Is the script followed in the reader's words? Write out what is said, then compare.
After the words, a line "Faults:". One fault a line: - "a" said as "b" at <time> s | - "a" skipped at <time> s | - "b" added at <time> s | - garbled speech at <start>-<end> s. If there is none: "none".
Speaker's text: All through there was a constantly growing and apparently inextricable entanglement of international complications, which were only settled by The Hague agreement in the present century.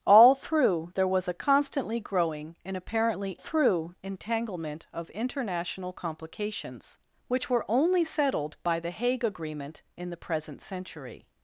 All through there was a constantly growing and apparently through entanglement of international complications, which were only settled by The Hague agreement in the present century.
Faults:
- "inextricable" said as "through" at 3.3 s